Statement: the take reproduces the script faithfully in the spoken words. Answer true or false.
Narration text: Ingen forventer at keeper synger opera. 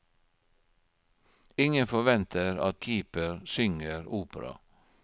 true